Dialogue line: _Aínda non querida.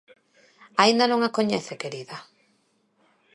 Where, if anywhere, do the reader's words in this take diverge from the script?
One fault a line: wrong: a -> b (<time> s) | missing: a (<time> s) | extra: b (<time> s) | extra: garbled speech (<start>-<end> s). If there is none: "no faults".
extra: a coñece (1.2 s)